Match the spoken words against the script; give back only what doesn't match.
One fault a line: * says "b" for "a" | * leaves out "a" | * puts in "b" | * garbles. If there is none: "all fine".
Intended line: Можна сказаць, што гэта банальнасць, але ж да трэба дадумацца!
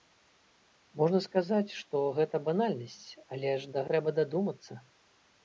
all fine